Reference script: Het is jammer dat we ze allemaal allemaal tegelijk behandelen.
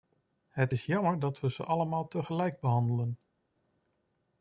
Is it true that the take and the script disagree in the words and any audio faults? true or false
true